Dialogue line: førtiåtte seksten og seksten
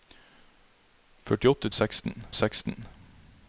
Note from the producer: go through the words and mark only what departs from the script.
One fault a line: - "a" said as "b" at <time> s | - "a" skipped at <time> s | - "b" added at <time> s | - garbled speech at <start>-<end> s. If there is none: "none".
none